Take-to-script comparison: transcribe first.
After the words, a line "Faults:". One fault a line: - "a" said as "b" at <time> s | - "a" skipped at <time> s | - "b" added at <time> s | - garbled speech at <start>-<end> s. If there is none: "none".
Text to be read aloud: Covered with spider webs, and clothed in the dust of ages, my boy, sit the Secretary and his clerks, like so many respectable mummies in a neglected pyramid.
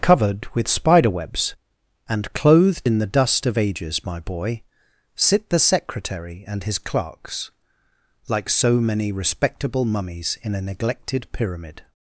Covered with spider webs, and clothed in the dust of ages, my boy, sit the Secretary and his clerks, like so many respectable mummies in a neglected pyramid.
Faults:
none